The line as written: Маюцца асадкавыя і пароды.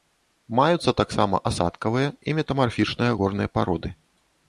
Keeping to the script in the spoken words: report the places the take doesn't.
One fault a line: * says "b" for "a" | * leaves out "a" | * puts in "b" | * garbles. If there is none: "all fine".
* puts in "таксама"
* puts in "метамарфічныя горныя"